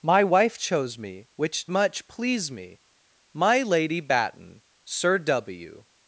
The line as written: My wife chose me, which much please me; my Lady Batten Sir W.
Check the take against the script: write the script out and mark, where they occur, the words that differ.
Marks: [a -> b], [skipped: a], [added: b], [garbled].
My wife chose me, which much please me; my Lady Batten Sir W.